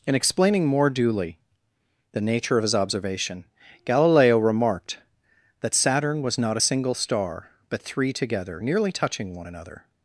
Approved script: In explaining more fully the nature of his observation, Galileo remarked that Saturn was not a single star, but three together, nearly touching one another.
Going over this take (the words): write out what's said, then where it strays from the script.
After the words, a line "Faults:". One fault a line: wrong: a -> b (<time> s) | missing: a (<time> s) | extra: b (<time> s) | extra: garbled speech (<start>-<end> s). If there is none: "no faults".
In explaining more duly the nature of his observation, Galileo remarked that Saturn was not a single star, but three together, nearly touching one another.
Faults:
wrong: fully -> duly (0.9 s)